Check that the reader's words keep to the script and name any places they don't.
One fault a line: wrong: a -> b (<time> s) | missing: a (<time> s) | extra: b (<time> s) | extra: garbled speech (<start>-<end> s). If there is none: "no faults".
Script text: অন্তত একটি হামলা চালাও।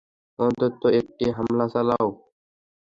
no faults